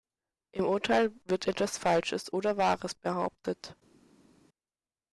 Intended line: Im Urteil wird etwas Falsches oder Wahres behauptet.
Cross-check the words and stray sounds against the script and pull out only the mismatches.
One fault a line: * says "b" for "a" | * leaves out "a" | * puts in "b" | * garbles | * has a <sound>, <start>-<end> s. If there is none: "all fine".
all fine